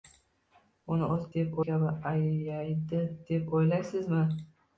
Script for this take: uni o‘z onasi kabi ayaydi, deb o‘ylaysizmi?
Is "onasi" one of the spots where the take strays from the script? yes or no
yes